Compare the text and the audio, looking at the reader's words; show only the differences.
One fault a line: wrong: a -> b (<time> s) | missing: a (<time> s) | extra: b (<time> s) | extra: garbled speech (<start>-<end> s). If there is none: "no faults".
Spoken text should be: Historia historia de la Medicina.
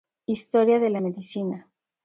missing: historia (0.8 s)